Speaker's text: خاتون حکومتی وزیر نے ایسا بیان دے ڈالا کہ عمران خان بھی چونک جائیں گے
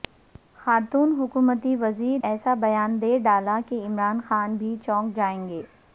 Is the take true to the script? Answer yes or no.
no